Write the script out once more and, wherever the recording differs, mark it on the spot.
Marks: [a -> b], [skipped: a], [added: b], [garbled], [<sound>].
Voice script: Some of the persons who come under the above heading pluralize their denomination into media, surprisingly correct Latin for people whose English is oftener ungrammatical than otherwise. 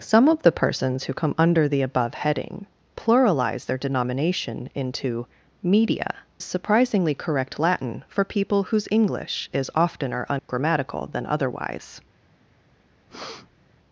Some of the persons who come under the above heading pluralize their denomination into media, surprisingly correct Latin for people whose English is oftener ungrammatical [dropout] than otherwise. [breath]